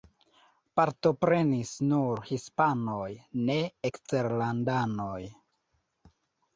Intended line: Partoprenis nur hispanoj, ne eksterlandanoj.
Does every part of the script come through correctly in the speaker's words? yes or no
yes